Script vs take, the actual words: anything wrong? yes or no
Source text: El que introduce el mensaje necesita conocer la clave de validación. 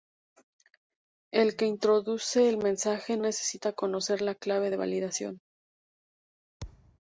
no